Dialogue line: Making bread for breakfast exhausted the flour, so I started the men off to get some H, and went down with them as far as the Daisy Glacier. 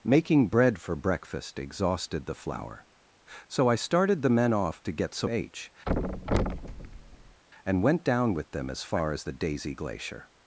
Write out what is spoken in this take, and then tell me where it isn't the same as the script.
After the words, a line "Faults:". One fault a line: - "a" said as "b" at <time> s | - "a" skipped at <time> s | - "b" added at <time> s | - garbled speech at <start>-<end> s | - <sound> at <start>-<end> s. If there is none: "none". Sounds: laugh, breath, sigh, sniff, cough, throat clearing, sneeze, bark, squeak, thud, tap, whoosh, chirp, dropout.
Making bread for breakfast exhausted the flour, so I started the men off to get some H, and went down with them as far as the Daisy Glacier.
Faults:
- thud at 5.9-7.4 s